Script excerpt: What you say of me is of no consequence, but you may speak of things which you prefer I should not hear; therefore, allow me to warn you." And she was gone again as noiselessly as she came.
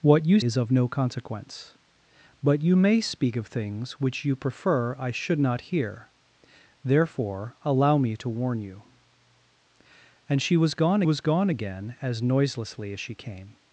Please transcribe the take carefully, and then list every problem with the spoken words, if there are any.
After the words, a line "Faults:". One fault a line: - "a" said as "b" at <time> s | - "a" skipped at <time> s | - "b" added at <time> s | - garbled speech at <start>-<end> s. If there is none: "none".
What you is of no consequence, but you may speak of things which you prefer I should not hear; therefore, allow me to warn you." And she was gone was gone again as noiselessly as she came.
Faults:
- "say of me" skipped at 0.4 s
- "was gone" added at 11.0 s